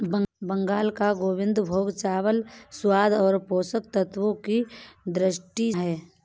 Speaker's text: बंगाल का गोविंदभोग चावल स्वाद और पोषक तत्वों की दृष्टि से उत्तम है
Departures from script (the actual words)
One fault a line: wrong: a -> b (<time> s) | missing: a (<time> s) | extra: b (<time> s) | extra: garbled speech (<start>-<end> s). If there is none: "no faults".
missing: से उत्तम (5.7 s)